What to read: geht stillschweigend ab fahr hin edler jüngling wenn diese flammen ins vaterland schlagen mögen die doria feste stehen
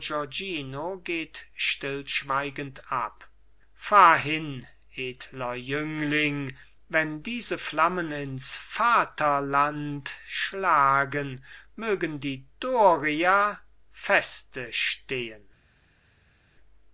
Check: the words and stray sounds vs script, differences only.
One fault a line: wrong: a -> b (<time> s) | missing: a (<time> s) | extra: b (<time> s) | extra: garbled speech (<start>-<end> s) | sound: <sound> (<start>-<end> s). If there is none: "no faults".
no faults